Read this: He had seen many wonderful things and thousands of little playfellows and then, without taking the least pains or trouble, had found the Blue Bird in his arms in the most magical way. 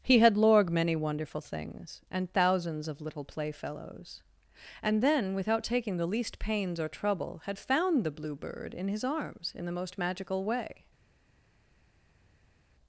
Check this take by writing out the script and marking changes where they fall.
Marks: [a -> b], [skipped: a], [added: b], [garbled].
He had [seen -> lorg] many wonderful things and thousands of little playfellows and then, without taking the least pains or trouble, had found the Blue Bird in his arms in the most magical way.